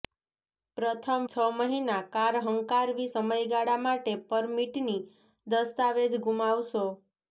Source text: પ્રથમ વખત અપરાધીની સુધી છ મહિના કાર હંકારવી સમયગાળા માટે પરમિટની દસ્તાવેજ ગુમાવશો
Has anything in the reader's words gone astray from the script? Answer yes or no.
yes